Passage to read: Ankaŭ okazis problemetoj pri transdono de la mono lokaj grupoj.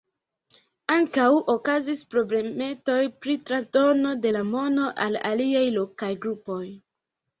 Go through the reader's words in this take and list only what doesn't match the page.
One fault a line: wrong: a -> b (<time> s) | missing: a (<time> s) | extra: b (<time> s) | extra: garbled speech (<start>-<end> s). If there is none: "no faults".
extra: al aliaj (5.1 s)